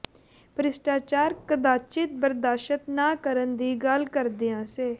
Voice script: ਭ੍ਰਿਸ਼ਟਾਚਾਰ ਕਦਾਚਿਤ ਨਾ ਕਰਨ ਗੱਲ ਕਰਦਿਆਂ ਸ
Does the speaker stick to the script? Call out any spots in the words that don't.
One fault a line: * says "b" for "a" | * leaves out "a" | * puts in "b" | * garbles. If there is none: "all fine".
* puts in "ਬਰਦਾਸ਼ਤ"
* puts in "ਦੀ"